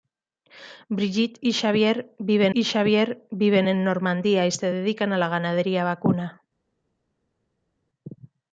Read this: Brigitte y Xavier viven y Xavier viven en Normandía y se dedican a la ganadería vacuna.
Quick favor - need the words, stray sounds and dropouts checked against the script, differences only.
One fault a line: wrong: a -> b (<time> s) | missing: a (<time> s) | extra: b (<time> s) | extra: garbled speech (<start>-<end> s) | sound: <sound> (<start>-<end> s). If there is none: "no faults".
no faults